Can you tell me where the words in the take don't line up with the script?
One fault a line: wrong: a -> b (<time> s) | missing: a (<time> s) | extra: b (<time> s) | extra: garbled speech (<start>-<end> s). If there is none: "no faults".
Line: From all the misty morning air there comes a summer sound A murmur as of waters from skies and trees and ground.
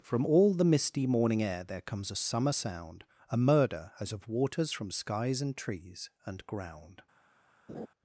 wrong: murmur -> murder (3.4 s)